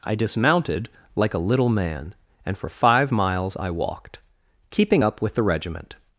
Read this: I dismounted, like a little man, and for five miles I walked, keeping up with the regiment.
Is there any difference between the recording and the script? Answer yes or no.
no